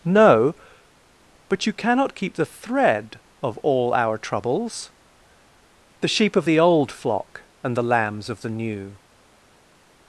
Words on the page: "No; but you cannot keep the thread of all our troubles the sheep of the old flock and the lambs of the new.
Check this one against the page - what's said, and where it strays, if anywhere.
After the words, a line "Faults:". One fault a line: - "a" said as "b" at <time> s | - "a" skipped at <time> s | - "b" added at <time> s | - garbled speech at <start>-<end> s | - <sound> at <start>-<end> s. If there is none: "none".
"No; but you cannot keep the thread of all our troubles the sheep of the old flock and the lambs of the new.
Faults:
none